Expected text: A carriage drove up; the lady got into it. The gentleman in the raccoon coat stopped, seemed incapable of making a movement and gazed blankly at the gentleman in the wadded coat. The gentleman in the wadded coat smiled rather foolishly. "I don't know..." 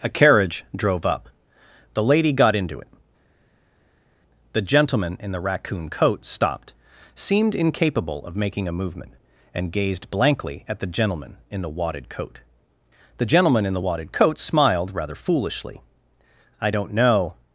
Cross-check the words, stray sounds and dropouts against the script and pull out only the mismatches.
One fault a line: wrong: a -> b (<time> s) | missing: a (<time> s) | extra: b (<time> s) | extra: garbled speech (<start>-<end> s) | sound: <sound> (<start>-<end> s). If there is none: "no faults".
no faults